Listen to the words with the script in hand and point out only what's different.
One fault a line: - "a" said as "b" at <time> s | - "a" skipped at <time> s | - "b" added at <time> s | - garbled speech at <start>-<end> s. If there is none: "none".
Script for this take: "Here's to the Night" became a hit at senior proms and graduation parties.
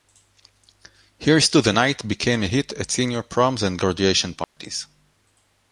none